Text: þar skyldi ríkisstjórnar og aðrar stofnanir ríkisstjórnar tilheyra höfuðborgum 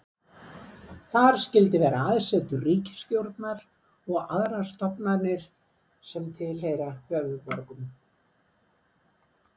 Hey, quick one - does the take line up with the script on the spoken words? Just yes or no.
no